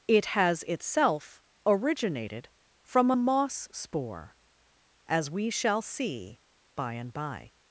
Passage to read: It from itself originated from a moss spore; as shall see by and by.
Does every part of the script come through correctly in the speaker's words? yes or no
no